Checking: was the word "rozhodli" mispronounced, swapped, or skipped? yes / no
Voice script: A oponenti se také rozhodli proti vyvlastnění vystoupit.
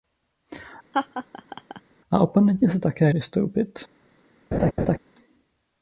yes